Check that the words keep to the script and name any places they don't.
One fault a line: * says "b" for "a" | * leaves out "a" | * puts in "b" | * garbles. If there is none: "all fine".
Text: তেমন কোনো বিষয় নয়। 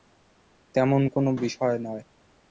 all fine